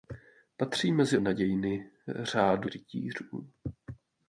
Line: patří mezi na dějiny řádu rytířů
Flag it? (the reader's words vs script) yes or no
no